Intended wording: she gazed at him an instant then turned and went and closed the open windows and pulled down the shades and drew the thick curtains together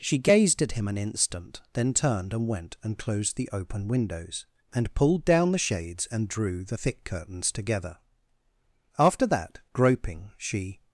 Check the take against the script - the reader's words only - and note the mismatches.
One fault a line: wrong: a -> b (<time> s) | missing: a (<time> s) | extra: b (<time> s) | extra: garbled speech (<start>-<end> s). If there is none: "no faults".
extra: after that groping she (9.0 s)